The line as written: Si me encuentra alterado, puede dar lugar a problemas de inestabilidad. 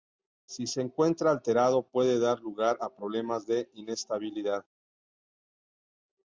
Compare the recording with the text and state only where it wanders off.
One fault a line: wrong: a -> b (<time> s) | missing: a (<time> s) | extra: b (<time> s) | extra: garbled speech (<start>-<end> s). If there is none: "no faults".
wrong: me -> se (0.7 s)